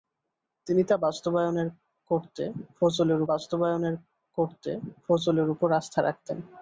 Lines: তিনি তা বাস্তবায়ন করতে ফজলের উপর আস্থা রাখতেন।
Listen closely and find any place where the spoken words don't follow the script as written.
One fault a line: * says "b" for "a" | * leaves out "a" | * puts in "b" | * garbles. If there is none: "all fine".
* puts in "বাস্তবায়ন করতে ফজলের"